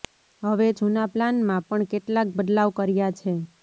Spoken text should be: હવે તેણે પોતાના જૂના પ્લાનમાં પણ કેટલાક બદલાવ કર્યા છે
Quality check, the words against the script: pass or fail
fail